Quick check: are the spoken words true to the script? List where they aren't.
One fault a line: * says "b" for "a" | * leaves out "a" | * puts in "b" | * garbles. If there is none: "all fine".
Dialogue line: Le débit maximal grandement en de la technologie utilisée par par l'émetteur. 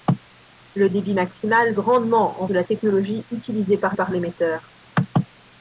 all fine